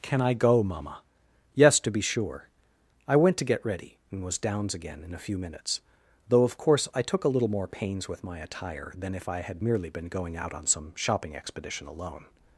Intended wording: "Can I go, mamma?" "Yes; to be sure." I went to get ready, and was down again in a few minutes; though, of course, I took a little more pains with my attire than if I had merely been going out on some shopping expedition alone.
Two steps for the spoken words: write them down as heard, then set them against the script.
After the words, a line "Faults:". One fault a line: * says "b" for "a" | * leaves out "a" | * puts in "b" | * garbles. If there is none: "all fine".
"Can I go, mamma?" "Yes; to be sure." I went to get ready, and was downs again in a few minutes; though, of course, I took a little more pains with my attire than if I had merely been going out on some shopping expedition alone.
Faults:
* says "downs" for "down"